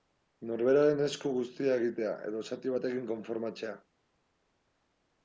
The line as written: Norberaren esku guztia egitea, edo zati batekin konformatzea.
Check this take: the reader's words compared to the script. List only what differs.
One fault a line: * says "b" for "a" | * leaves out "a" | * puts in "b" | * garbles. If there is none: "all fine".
all fine